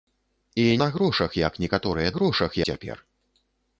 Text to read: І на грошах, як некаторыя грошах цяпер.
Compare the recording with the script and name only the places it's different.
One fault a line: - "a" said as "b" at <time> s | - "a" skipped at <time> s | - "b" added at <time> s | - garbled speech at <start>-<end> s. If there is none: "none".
none